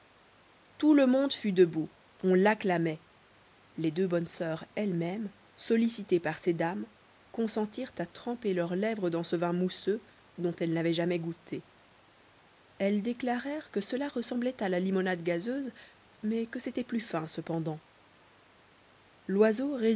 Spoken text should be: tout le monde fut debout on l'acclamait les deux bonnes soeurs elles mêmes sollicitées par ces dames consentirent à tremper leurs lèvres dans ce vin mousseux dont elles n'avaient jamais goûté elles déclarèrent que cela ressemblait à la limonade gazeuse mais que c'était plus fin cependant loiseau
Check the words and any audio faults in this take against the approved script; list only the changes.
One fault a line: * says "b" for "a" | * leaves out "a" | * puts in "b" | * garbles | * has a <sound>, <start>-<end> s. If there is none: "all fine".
all fine